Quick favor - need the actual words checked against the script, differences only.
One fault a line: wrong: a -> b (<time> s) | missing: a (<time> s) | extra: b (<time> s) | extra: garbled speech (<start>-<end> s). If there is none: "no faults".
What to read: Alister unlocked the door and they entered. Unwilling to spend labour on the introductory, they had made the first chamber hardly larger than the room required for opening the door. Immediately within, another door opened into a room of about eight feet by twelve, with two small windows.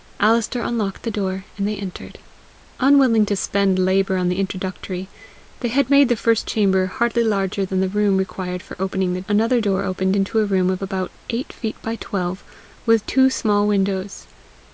missing: door Immediately within (9.2 s)